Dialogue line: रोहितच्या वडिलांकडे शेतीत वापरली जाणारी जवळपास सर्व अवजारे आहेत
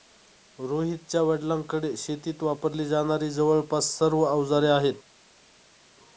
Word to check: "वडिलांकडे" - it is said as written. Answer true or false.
true